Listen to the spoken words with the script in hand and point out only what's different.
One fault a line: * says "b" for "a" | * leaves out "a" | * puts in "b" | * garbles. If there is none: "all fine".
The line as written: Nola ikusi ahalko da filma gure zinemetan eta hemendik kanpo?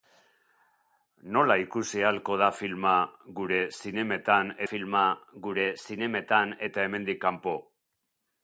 * puts in "filma gure zinemetan"